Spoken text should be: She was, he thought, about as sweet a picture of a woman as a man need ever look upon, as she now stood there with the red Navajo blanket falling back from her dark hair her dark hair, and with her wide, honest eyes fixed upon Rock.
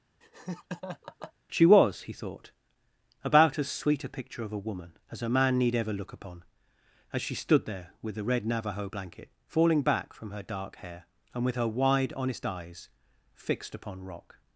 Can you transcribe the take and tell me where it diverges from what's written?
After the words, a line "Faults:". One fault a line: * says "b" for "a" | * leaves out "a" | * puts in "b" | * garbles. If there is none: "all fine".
She was, he thought, about as sweet a picture of a woman as a man need ever look upon, as she stood there with the red Navajo blanket falling back from her dark hair, and with her wide, honest eyes fixed upon Rock.
Faults:
* leaves out "now"
* leaves out "her dark hair"